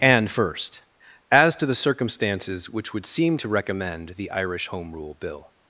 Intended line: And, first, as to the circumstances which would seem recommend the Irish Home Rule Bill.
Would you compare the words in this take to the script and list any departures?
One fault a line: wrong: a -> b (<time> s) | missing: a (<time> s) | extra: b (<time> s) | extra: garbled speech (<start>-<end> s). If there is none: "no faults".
extra: to (3.4 s)